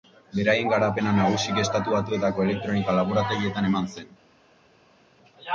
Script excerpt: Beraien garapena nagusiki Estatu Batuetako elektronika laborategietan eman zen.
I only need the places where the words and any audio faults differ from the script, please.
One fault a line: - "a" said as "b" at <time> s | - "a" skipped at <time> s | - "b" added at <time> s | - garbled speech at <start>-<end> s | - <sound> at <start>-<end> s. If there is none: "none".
none